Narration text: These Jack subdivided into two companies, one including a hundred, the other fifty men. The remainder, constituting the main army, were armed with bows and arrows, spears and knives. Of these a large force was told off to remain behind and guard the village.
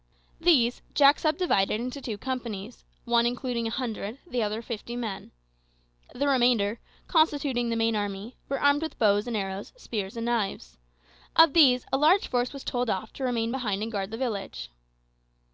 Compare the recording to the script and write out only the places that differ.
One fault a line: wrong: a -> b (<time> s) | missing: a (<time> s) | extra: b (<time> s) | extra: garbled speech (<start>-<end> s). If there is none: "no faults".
no faults